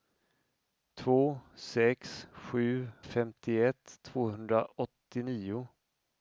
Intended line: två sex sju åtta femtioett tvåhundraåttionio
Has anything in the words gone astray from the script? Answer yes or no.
yes